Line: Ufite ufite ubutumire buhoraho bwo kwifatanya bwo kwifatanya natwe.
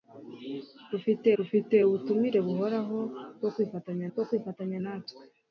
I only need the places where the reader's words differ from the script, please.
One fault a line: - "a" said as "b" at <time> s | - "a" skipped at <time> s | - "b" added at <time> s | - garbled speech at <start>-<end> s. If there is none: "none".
none